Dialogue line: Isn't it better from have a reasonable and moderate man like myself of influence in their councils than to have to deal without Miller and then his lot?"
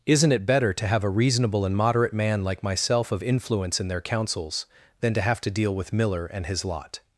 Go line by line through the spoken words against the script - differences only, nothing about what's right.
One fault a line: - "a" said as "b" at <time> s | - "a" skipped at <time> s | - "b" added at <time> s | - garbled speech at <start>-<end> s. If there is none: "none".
- "from" said as "to" at 0.7 s
- "without" said as "with" at 5.7 s
- "then" skipped at 6.4 s